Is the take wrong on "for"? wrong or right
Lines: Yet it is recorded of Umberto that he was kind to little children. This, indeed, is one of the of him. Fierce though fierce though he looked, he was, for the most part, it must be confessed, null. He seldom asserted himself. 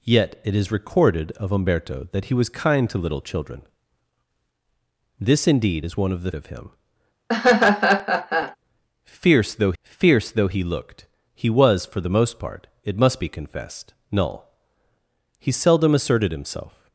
right